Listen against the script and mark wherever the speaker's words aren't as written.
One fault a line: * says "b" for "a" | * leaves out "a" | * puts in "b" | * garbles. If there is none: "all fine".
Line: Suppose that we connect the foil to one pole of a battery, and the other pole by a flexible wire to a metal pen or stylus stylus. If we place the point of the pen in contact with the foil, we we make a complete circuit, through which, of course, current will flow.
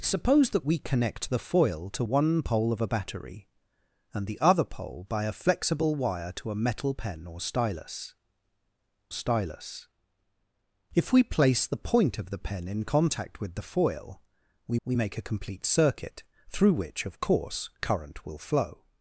all fine